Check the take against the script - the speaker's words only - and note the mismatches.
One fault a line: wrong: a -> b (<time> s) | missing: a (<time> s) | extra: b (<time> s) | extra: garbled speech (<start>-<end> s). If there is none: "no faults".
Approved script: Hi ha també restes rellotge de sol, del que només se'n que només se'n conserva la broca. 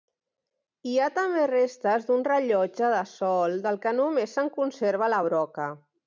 extra: d'un (2.1 s)
missing: que només se'n (4.5 s)